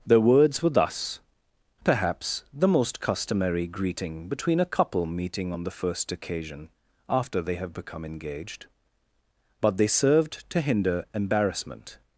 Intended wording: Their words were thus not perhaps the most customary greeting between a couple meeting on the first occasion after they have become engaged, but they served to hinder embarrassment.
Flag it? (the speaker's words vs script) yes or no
yes